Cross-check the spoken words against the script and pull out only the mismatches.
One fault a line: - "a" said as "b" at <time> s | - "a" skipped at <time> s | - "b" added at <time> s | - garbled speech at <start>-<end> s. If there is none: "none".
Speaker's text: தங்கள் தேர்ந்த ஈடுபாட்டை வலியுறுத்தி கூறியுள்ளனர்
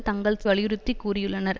- "தேர்ந்த ஈடுபாட்டை" skipped at 0.4 s